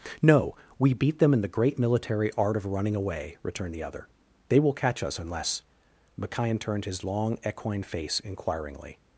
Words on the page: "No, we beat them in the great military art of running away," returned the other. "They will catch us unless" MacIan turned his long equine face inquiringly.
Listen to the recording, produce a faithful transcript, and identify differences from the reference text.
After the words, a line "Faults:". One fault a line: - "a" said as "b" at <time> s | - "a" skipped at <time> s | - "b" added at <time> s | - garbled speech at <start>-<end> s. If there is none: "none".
"No, we beat them in the great military art of running away," returned the other. "They will catch us unless" MacIan turned his long equine face inquiringly.
Faults:
none